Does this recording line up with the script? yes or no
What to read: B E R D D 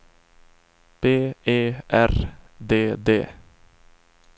yes